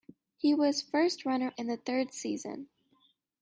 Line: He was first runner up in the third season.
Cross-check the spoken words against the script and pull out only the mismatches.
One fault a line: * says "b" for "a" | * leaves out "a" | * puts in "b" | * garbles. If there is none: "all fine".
* leaves out "up"